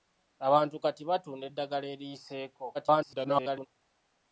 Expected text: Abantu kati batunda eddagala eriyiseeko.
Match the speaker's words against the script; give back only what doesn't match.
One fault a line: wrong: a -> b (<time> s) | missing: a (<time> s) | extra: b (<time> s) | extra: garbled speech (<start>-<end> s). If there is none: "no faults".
extra: garbled speech (2.7-3.7 s)